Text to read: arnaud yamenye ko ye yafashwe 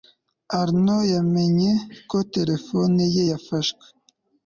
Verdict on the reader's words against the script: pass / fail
fail